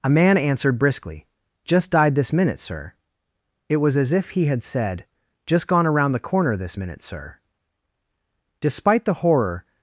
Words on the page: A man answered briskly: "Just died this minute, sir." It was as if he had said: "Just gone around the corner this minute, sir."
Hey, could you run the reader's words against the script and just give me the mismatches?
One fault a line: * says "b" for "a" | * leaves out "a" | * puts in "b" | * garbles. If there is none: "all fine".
* puts in "Despite the horror"